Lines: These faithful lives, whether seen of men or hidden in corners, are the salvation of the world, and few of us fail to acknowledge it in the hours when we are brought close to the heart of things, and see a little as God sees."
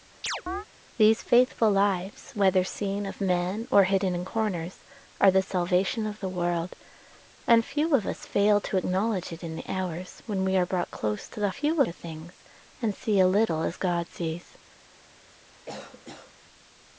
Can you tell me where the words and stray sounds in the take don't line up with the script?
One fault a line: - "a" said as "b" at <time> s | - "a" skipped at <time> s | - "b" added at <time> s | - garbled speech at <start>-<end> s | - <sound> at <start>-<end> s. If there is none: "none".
- chirp at 0.2-0.7 s
- "heart" said as "few" at 11.5 s
- cough at 15.7-16.3 s